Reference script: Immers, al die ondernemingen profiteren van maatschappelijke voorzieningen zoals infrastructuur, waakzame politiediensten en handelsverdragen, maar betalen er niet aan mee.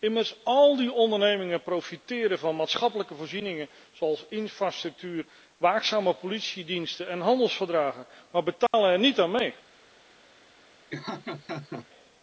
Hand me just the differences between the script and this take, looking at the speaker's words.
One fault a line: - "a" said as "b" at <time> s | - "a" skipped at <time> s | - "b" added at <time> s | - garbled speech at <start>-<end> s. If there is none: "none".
none